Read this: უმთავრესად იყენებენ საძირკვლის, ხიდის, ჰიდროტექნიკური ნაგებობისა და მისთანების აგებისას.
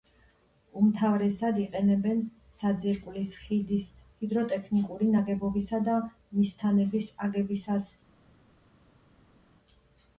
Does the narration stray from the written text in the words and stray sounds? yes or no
no